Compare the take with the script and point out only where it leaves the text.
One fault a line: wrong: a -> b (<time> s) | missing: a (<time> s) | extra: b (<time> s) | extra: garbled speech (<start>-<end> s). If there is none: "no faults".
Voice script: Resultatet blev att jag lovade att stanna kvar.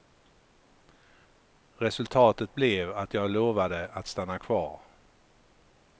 no faults